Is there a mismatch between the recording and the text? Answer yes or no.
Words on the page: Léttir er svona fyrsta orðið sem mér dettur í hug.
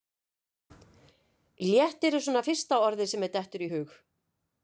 no